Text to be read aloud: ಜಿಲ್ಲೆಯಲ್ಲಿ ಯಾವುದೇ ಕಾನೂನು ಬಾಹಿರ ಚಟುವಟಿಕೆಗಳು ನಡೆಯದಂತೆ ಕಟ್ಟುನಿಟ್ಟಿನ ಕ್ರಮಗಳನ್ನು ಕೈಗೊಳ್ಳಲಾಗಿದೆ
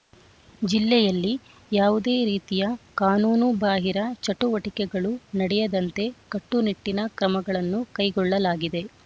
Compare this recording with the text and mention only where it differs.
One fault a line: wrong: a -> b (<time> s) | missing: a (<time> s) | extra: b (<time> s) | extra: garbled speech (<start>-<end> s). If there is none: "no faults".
extra: ರೀತಿಯ (2.2 s)